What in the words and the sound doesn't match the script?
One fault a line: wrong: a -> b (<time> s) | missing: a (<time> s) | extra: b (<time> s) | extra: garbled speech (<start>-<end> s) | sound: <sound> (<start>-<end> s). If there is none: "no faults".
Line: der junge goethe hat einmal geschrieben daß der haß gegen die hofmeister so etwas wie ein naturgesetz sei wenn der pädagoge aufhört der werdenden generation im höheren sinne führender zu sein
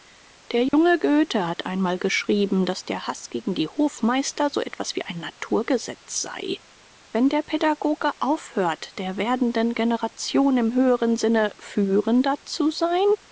sound: dropout (0.7-0.7 s)